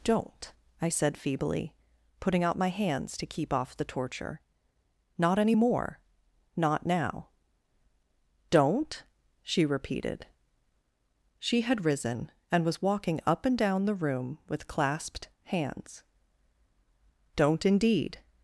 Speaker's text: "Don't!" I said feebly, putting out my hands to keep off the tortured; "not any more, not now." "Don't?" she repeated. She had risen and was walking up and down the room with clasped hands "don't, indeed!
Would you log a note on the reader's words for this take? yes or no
yes